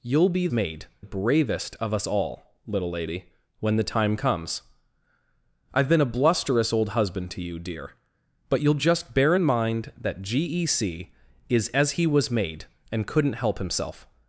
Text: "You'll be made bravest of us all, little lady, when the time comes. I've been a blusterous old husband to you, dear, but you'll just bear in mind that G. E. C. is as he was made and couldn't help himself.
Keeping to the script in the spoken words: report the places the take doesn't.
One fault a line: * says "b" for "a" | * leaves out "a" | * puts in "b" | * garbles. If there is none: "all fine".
all fine